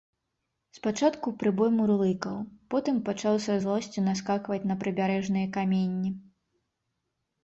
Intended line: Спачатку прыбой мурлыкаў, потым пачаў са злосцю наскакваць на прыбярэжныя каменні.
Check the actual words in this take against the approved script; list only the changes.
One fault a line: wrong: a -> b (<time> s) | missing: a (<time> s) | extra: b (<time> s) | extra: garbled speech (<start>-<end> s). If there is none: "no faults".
no faults